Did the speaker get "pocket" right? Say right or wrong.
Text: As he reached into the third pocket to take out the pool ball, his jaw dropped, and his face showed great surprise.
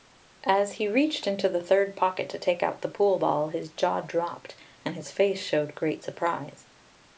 right